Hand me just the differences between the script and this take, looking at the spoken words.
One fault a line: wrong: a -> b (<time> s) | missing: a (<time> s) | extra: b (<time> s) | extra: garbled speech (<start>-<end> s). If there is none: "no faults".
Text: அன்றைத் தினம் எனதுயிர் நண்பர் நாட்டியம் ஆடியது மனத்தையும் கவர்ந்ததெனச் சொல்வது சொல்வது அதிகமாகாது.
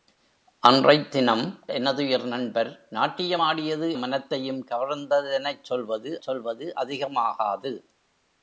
no faults